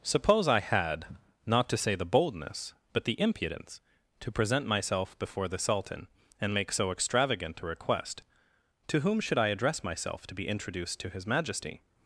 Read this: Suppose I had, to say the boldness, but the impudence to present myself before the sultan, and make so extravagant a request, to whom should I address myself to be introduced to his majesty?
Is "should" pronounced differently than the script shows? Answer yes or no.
no